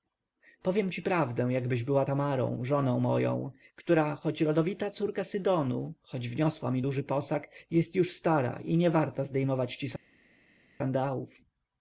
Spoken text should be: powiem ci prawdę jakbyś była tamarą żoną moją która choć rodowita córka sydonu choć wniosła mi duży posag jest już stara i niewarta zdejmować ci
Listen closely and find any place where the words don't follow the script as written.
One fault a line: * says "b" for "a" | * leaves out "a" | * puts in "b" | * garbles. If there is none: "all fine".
all fine